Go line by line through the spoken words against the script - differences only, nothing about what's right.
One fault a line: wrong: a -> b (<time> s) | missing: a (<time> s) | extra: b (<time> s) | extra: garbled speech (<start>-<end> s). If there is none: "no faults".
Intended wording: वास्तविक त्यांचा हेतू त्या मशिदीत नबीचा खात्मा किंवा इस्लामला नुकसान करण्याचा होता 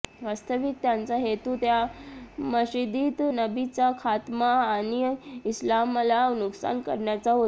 wrong: किंवा -> आणि (4.5 s)